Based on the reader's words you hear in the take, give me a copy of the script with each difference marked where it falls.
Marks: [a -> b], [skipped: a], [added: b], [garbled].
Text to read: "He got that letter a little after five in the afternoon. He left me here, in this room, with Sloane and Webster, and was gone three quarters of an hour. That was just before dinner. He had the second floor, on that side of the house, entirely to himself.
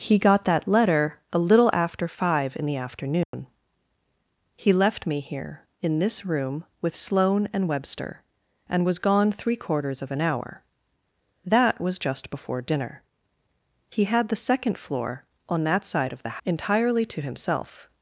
"He got that letter a little after five in the afternoon. He left me here, in this room, with Sloane and Webster, and was gone three quarters of an hour. That was just before dinner. He had the second floor, on that side of the [skipped: house,] entirely to himself.